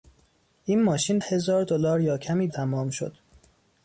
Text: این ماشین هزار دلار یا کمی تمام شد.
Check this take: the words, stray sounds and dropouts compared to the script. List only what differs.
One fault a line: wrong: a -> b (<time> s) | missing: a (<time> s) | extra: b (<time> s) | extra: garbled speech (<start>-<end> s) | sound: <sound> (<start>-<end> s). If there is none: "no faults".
no faults